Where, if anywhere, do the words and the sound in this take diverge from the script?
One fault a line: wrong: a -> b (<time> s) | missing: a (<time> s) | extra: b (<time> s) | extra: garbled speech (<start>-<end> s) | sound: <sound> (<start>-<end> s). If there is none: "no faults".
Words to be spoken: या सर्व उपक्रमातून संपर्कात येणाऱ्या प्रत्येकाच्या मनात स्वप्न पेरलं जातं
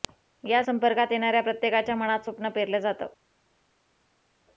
missing: सर्व उपक्रमातून (0.6 s)